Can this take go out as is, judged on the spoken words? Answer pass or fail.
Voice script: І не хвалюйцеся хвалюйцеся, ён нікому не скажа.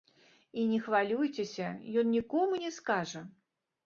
fail